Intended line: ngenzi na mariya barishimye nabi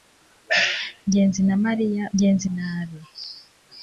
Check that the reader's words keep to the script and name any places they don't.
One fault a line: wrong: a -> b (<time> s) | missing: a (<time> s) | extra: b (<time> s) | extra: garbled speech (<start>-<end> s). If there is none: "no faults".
wrong: barishimye -> ngenzi (2.1 s)